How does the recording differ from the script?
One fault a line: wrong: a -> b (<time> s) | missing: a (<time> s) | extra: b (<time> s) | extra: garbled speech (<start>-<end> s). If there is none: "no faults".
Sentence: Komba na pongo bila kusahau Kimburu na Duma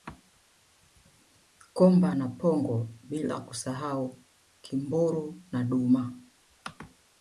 no faults